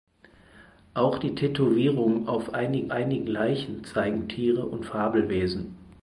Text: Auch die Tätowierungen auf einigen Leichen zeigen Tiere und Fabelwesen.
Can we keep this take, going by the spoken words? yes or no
no